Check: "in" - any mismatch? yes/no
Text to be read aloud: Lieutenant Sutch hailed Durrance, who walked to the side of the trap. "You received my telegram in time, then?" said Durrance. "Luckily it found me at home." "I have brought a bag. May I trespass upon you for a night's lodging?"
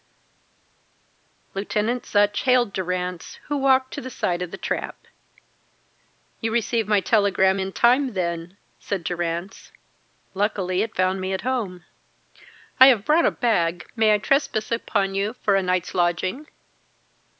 no